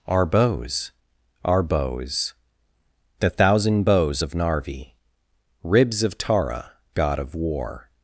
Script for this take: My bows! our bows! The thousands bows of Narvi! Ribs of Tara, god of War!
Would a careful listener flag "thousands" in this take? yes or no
yes